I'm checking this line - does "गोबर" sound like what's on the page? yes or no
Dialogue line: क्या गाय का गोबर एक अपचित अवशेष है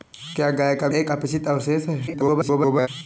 no